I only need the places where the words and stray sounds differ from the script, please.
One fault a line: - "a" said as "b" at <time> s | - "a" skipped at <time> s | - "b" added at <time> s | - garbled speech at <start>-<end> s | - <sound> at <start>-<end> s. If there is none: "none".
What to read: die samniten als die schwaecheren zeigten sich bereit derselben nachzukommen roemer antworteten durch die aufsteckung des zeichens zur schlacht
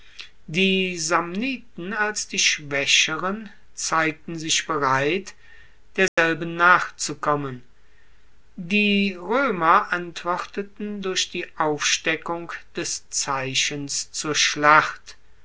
- dropout at 6.1-6.2 s
- "die" added at 8.6 s